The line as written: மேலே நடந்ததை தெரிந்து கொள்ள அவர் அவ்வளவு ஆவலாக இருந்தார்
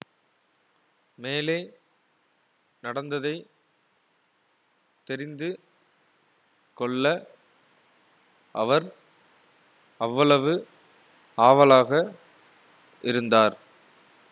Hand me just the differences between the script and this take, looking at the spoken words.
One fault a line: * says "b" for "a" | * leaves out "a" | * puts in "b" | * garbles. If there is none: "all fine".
all fine